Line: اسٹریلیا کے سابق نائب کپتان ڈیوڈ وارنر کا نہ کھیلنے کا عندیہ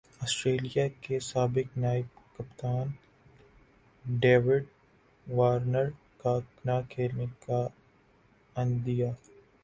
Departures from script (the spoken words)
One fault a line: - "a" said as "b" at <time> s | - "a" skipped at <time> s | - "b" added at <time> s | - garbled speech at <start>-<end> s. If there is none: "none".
none